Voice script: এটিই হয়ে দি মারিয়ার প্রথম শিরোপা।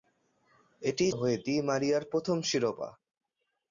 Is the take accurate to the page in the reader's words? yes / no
yes